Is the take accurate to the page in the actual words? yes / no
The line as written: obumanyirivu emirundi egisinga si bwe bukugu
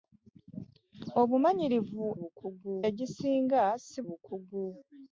no